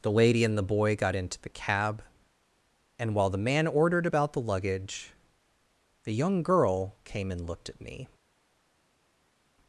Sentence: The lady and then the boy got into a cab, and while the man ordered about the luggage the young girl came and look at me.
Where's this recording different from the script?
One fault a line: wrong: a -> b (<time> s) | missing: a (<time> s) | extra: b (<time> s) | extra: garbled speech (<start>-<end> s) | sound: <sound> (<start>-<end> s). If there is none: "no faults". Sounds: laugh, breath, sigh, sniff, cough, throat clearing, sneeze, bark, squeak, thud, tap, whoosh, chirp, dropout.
missing: then (0.6 s)
wrong: a -> the (1.4 s)
wrong: look -> looked (7.4 s)